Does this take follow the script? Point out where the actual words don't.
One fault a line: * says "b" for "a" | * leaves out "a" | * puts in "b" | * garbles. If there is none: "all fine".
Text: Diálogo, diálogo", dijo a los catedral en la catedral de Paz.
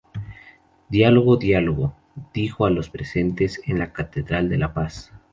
* says "presentes" for "catedral"
* puts in "La"